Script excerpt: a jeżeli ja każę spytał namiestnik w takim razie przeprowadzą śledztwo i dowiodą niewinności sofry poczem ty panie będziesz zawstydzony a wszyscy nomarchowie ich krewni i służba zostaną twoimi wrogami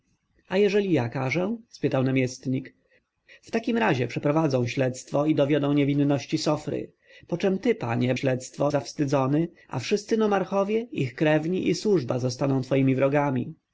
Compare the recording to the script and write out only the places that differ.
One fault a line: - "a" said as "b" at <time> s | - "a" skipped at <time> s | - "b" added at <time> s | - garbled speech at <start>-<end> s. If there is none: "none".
- "będziesz" said as "śledztwo" at 8.1 s